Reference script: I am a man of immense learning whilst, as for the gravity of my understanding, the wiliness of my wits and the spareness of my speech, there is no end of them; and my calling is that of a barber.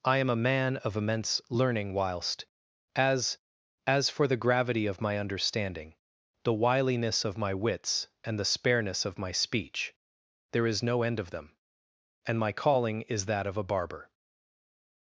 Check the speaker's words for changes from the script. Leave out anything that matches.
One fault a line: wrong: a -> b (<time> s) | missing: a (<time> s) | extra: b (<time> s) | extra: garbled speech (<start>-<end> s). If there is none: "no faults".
extra: as (3.9 s)